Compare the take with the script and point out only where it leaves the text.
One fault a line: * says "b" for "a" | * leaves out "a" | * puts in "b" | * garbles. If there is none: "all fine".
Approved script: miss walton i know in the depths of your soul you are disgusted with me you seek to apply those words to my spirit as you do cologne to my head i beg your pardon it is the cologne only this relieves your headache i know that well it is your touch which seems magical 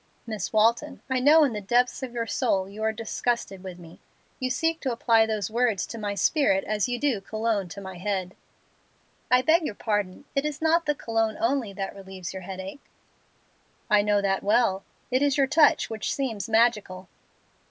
* puts in "not"
* says "that" for "this"